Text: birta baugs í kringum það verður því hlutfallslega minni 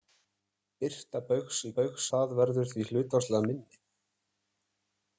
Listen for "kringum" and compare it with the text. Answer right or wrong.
wrong